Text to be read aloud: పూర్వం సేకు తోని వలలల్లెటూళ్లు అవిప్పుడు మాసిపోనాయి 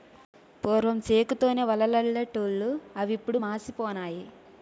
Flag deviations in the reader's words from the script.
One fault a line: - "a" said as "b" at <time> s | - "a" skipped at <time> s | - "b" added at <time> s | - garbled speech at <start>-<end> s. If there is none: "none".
none